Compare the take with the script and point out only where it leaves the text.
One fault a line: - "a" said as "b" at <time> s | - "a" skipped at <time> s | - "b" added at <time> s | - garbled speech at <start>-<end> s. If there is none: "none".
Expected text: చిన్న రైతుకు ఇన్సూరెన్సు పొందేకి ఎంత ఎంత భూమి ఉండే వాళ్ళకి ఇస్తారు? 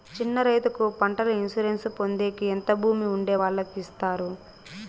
- "పంటల" added at 1.0 s
- "ఎంత" skipped at 2.7 s